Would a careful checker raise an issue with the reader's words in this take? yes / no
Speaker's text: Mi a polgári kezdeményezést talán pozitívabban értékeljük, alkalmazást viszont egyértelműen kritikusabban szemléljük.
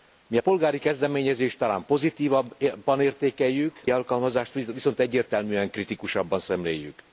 no